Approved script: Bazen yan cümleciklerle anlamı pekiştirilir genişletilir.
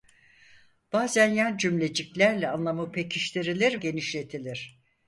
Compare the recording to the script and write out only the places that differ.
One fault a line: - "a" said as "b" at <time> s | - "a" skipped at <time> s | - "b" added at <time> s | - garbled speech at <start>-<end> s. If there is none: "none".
none